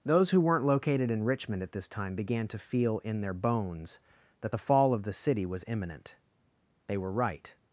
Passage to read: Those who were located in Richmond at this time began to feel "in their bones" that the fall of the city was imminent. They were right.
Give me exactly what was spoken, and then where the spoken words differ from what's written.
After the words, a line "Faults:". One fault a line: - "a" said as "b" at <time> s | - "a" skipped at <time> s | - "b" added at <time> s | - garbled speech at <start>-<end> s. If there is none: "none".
Those who weren't located in Richmond at this time began to feel "in their bones" that the fall of the city was imminent. They were right.
Faults:
- "were" said as "weren't" at 0.4 s